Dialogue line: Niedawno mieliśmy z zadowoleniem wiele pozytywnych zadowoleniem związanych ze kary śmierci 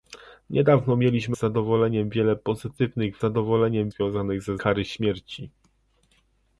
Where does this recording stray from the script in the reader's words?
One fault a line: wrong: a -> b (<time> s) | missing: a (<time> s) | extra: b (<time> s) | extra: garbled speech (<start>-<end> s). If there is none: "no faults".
no faults